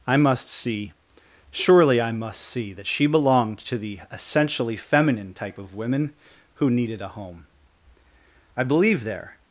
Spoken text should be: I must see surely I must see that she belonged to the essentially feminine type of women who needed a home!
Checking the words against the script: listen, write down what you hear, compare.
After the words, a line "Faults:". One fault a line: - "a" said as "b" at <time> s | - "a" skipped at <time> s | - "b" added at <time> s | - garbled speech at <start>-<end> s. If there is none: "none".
I must see surely I must see that she belonged to the essentially feminine type of women who needed a home! "I believe there
Faults:
- "I believe there" added at 8.6 s